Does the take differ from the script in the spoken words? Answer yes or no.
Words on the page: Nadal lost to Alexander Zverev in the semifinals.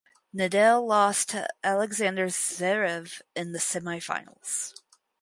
no